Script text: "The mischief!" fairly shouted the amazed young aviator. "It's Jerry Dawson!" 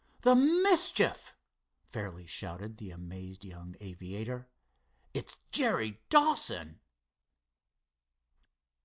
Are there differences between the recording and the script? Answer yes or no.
no